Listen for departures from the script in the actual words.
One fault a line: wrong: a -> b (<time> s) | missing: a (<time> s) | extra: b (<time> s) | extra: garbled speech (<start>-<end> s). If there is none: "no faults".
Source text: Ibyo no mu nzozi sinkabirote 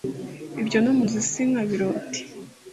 no faults